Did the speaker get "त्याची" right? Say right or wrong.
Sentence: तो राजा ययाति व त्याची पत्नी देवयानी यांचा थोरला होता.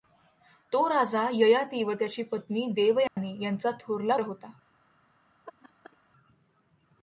right